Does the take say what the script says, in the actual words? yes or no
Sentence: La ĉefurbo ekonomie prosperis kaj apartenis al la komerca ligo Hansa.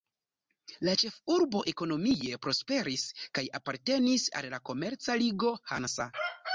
yes